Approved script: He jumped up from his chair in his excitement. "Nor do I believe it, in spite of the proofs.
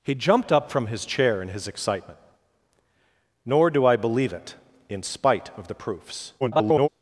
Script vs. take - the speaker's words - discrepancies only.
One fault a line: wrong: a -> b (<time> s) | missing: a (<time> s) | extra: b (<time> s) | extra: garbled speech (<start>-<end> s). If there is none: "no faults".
extra: garbled speech (6.4-6.9 s)